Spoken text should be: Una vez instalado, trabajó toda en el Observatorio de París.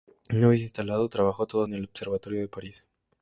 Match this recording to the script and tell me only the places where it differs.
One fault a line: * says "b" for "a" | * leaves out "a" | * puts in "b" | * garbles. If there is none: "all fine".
all fine